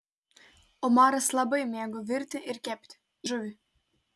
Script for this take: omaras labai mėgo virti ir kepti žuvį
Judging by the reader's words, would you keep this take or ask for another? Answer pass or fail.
pass